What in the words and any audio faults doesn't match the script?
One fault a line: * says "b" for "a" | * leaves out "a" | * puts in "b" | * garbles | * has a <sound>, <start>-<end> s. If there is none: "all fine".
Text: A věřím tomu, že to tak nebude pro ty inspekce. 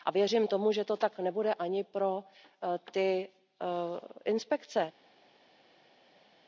* puts in "ani"